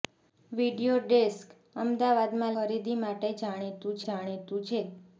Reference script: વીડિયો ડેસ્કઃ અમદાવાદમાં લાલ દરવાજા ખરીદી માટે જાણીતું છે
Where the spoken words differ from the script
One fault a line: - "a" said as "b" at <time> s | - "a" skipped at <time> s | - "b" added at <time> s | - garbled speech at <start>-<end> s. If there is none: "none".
- "લાલ દરવાજા" skipped at 2.6 s
- "જાણીતું" added at 4.0 s